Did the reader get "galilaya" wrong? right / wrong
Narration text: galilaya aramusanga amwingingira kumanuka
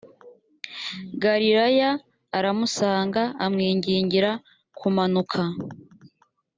right